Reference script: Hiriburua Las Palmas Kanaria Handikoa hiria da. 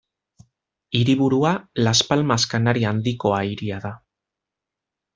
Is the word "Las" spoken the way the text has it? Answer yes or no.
yes